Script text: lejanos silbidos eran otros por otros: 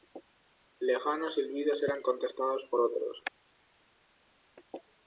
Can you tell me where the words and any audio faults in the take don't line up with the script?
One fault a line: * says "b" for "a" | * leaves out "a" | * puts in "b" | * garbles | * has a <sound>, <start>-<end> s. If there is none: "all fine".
* says "contestados" for "otros"